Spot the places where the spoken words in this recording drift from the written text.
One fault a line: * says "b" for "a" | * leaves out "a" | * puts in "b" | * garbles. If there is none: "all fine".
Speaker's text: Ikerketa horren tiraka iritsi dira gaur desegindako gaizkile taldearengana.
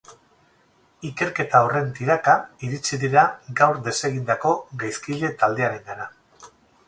all fine